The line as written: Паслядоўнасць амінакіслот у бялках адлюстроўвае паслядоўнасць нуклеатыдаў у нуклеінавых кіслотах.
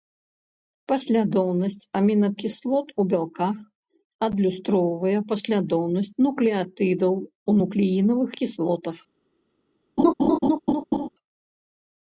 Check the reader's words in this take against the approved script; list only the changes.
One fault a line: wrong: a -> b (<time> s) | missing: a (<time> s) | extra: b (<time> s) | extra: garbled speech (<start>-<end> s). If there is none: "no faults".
no faults